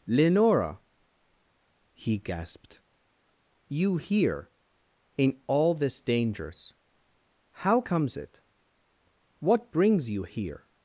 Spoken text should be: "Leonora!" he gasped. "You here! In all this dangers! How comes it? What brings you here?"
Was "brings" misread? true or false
false